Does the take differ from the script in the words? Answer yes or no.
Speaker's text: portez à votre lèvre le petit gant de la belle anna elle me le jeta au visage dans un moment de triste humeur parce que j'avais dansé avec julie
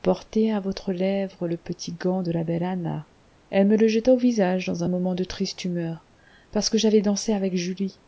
no